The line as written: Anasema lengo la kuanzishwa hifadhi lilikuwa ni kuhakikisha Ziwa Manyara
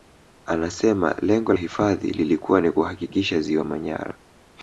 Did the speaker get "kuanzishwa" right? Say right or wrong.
wrong